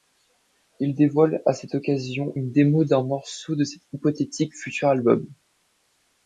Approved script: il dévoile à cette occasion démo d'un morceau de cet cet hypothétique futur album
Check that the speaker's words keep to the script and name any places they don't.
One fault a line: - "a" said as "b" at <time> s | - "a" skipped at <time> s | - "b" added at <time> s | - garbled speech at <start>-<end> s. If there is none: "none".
- "une" added at 2.3 s
- "cet" skipped at 3.8 s